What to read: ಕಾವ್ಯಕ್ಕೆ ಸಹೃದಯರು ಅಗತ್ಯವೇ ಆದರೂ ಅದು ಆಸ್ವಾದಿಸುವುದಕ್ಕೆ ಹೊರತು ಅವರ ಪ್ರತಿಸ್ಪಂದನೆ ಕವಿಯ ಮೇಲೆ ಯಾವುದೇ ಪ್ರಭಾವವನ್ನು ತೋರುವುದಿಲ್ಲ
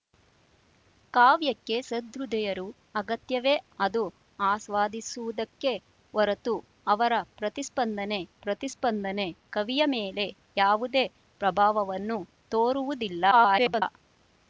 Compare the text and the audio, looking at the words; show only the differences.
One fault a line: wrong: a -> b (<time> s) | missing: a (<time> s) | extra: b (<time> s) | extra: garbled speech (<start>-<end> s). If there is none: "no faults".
missing: ಆದರೂ (3.5 s)
extra: ಪ್ರತಿಸ್ಪಂದನೆ (8.4 s)
extra: garbled speech (13.3-13.8 s)